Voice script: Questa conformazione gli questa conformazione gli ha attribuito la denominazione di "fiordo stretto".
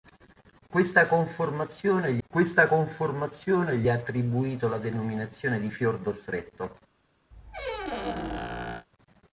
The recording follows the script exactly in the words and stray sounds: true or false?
false